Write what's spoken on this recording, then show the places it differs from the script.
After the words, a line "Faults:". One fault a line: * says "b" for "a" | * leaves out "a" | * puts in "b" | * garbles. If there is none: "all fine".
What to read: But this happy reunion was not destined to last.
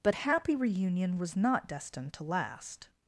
But happy reunion was not destined to last.
Faults:
* leaves out "this"